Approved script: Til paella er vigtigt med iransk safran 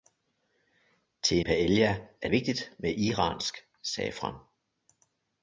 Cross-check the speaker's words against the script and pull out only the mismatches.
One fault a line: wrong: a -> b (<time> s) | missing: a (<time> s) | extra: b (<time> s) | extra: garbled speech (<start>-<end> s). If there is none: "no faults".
no faults